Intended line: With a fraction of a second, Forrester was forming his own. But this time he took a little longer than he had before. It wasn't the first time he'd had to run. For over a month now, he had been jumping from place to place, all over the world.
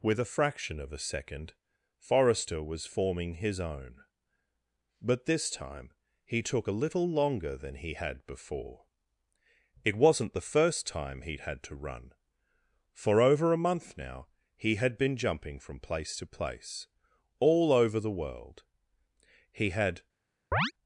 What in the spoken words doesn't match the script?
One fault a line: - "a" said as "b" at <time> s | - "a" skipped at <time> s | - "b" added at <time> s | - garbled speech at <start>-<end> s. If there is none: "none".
- "He had" added at 19.5 s